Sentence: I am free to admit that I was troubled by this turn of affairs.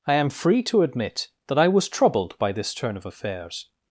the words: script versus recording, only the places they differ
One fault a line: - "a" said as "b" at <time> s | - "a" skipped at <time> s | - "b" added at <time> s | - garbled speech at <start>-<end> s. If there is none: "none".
none